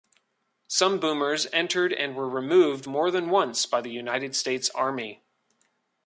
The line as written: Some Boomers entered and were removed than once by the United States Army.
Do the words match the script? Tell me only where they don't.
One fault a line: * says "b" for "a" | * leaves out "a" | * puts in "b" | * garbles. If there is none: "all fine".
* puts in "more"